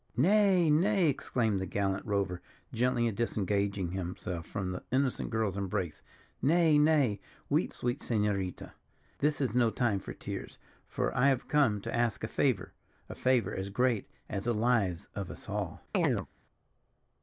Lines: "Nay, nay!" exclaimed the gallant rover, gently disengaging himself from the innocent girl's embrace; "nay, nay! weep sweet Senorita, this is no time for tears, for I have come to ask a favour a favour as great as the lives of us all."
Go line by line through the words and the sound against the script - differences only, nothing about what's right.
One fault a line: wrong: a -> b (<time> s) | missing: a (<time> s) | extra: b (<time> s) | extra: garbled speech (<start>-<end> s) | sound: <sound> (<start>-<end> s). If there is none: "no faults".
sound: chirp (15.9-16.3 s)